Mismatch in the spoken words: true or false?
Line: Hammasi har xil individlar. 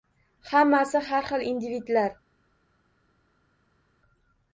false